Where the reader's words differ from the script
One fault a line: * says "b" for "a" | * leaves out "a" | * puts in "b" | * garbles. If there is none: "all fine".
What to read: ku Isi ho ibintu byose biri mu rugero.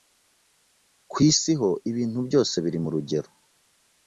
all fine